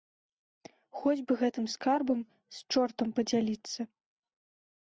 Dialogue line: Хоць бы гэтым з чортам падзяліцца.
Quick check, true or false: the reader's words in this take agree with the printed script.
false